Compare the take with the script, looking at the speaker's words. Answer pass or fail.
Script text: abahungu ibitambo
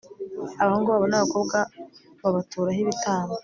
fail